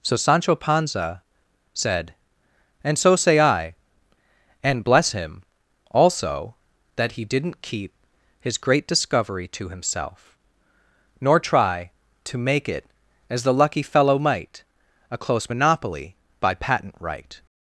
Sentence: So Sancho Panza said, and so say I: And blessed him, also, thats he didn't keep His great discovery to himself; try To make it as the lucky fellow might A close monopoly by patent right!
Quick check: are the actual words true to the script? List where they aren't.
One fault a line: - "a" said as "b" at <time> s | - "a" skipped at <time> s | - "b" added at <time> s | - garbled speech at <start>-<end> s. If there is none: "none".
- "blessed" said as "bless" at 4.8 s
- "thats" said as "that" at 7.0 s
- "nor" added at 11.2 s